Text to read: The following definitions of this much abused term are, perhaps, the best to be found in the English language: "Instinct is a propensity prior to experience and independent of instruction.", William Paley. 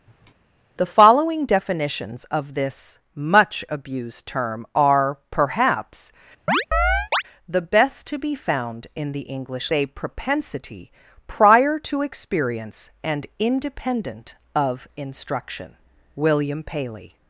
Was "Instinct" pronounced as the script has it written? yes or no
no